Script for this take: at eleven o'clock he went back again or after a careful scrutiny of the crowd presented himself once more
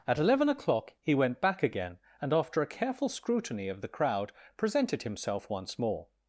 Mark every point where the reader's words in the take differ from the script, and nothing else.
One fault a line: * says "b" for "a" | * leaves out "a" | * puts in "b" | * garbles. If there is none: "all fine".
* says "and" for "or"